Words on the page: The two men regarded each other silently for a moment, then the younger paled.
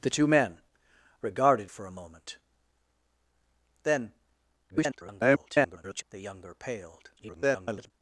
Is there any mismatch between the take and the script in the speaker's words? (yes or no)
yes